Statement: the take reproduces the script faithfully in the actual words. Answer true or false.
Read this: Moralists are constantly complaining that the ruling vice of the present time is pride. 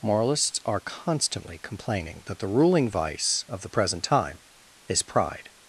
true